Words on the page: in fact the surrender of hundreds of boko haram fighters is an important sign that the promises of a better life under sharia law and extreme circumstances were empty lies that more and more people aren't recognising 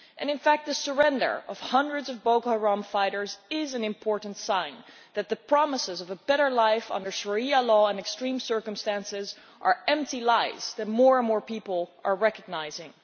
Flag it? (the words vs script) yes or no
yes